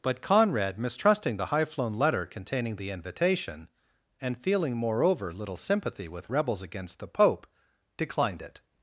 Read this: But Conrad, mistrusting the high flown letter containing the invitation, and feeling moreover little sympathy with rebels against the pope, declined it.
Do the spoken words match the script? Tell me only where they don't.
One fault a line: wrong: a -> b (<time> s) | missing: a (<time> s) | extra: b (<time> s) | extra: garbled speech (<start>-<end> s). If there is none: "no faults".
no faults